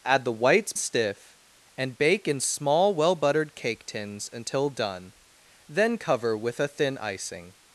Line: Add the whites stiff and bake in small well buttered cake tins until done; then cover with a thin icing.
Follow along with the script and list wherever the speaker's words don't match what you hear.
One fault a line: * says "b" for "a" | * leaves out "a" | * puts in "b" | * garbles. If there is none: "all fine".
all fine